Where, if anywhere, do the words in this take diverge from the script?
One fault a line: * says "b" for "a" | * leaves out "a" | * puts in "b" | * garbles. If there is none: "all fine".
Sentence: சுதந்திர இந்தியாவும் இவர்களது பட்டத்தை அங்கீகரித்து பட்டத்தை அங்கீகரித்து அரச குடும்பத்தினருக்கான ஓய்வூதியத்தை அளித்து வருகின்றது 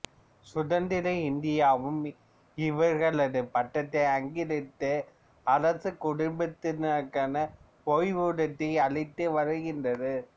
* leaves out "பட்டத்தை அங்கீகரித்து"